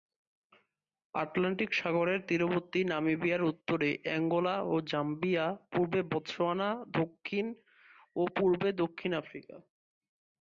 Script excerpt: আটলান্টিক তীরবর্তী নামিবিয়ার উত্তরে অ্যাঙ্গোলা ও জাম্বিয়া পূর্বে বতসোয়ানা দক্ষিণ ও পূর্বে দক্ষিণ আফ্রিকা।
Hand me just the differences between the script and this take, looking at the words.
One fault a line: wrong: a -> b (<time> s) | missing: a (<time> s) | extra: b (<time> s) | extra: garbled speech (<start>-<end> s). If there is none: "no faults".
extra: সাগরের (1.7 s)